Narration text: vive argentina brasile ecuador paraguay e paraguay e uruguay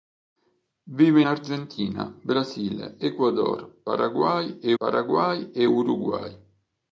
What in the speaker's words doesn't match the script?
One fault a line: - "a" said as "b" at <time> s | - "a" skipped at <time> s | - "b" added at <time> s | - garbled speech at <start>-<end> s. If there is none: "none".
none